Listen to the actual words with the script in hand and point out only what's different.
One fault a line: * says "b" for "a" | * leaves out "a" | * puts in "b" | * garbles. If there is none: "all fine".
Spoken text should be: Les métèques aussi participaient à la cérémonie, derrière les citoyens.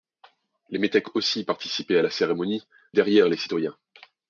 all fine